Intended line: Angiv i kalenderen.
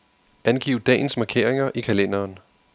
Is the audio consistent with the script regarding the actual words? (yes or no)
no